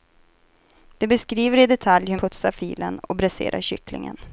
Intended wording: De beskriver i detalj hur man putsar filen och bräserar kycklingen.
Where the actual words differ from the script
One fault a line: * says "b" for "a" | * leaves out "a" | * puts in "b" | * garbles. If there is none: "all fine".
* leaves out "man"